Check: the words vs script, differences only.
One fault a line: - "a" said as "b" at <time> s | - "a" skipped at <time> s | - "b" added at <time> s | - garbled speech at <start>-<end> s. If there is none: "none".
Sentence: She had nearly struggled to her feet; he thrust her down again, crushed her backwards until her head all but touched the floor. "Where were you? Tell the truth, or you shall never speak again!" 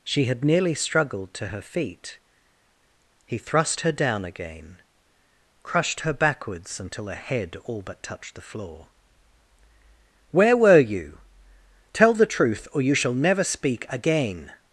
none